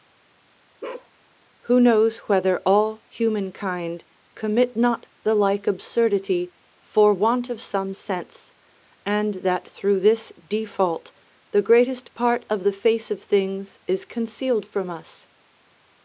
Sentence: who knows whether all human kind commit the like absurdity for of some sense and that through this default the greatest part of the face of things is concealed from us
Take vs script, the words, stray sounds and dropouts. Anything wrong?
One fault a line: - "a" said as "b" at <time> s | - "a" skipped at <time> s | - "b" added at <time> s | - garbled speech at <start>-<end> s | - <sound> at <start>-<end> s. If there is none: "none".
- bark at 0.8-1.1 s
- "not" added at 4.7 s
- "want" added at 7.1 s